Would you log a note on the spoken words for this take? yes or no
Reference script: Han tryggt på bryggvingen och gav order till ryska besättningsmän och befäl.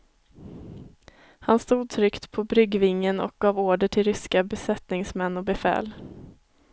yes